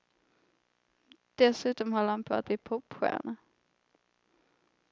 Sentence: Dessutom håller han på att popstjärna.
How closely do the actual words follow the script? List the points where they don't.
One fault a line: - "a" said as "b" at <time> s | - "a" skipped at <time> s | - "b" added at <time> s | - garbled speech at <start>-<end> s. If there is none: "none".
- "bli" added at 2.4 s